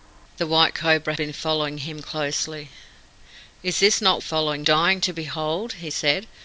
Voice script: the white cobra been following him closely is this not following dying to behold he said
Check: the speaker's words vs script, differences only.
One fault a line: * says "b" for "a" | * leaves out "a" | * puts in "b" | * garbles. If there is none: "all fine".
all fine